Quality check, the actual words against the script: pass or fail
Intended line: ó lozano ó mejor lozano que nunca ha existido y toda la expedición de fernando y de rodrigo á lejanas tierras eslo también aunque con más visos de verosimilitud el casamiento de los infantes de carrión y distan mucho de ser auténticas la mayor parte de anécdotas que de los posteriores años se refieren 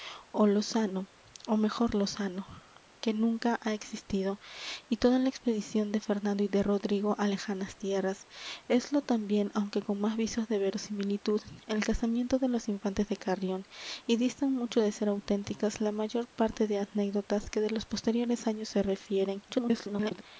fail